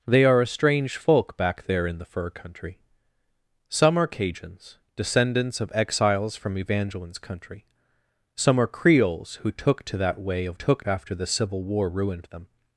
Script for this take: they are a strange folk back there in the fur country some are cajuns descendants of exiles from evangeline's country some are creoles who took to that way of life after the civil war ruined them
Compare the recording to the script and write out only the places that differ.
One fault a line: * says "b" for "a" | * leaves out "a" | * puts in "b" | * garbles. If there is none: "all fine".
* says "took" for "life"